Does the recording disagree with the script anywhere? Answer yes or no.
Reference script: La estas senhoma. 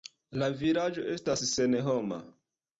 yes